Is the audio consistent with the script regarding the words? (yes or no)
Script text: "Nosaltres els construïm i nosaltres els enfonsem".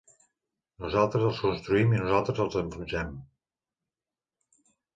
yes